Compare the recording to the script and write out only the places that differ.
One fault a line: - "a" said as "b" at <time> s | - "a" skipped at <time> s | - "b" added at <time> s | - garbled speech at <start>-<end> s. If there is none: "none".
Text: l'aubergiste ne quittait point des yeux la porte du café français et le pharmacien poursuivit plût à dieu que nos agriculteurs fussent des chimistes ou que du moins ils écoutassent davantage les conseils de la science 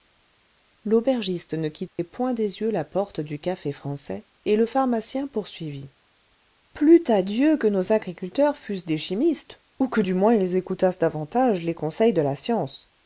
none